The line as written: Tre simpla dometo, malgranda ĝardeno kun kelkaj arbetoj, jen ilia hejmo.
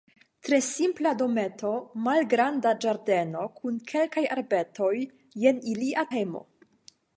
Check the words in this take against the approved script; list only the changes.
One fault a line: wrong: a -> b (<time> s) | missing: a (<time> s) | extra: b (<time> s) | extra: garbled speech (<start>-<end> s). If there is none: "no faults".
no faults